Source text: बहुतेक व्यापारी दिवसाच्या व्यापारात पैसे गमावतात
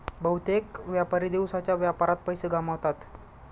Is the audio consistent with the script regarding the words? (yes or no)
yes